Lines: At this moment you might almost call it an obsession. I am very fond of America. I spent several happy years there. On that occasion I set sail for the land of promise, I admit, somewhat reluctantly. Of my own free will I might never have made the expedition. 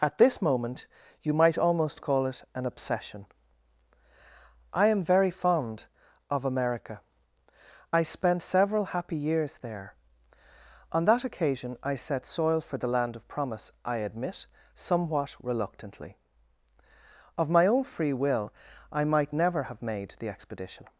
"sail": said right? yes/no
no